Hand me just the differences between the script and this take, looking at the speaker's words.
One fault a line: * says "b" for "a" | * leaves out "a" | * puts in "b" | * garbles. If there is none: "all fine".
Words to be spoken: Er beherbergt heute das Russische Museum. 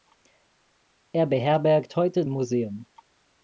* leaves out "das Russische"